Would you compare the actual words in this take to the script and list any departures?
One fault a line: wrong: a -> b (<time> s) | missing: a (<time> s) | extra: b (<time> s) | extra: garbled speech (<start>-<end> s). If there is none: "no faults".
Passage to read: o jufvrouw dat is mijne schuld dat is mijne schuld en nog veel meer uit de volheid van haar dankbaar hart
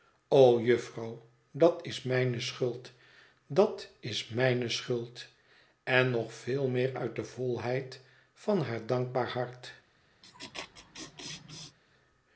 no faults